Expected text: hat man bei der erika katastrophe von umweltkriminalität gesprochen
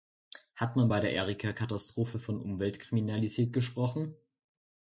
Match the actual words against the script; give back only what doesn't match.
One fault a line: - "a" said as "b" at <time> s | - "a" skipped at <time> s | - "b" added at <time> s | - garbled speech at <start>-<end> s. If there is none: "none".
none